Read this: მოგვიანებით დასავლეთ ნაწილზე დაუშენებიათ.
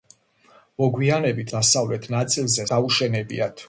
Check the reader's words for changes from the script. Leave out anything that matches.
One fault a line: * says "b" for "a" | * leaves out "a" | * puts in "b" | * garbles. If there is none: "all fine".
all fine